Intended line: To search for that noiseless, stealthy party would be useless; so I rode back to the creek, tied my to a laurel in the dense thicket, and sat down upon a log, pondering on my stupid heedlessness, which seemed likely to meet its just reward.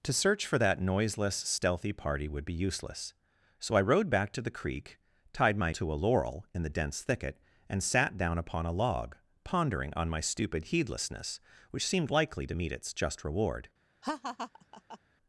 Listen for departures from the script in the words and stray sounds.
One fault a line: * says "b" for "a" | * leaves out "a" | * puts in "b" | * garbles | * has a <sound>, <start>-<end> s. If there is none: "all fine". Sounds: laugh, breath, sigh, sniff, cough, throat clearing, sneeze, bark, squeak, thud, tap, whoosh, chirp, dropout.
* has a laugh, 14.0-15.0 s